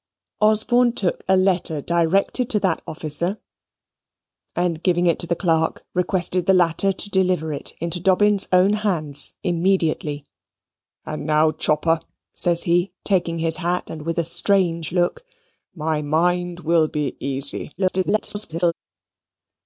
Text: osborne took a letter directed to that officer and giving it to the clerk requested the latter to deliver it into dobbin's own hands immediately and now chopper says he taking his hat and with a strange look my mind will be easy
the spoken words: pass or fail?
fail